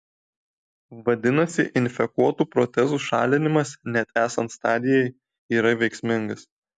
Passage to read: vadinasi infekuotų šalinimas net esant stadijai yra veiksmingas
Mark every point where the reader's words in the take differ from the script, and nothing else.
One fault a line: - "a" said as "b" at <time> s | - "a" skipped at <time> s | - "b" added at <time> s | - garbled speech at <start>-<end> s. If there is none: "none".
- "protezų" added at 2.5 s